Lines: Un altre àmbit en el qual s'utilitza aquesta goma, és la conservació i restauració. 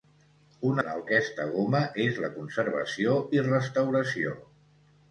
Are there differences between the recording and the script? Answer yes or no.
yes